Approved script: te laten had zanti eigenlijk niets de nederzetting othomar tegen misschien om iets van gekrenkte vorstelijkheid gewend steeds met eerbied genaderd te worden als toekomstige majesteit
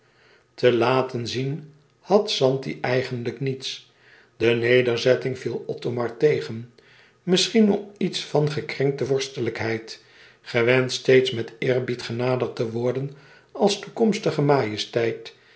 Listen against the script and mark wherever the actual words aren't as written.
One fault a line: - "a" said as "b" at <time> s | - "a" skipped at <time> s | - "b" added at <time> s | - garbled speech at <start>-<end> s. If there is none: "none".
- "zien" added at 1.3 s
- "viel" added at 5.4 s